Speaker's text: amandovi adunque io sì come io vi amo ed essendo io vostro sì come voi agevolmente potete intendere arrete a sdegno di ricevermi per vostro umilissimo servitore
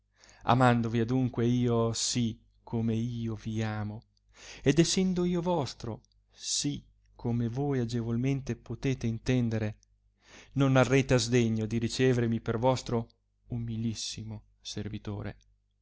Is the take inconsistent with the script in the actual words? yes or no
yes